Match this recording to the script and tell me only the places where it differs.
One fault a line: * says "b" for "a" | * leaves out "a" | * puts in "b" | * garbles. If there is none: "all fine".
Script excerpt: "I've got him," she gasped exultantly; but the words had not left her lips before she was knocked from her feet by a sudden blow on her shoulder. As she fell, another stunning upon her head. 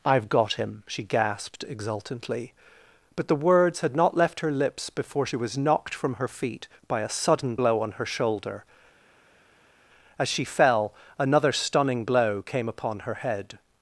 * puts in "blow came"